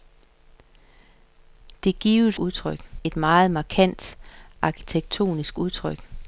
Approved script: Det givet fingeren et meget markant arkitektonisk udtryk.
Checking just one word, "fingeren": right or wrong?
wrong